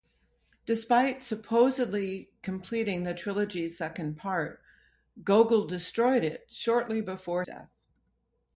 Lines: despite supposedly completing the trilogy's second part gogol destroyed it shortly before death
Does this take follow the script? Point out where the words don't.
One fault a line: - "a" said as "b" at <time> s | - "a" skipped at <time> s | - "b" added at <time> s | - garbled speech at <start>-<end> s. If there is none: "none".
none